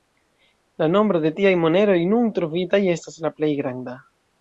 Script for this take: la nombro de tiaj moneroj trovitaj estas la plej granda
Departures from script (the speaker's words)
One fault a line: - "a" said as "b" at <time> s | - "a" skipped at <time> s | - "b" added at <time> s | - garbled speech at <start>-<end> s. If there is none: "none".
- "nun" added at 2.2 s